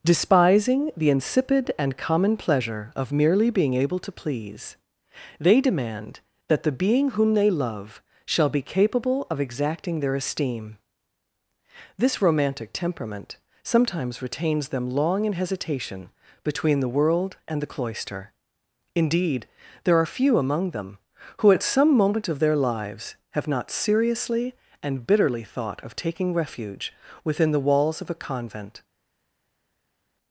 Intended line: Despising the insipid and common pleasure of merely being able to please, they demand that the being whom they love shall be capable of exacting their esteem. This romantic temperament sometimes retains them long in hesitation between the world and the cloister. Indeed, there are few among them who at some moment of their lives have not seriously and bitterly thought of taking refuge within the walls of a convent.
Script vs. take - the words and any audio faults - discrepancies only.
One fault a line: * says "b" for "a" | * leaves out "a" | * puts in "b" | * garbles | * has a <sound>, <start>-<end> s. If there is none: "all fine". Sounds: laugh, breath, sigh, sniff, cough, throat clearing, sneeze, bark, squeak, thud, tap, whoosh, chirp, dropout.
all fine